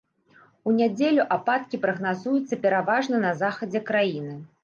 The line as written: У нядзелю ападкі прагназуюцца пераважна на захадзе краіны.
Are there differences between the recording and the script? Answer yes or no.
no